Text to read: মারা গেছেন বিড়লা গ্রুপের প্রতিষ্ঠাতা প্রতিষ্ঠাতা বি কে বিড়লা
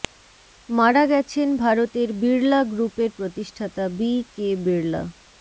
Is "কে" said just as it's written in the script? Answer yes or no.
yes